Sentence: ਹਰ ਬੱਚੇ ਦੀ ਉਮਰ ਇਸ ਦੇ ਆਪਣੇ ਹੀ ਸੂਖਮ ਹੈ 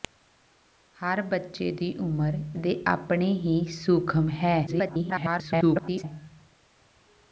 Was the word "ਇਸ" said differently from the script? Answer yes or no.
yes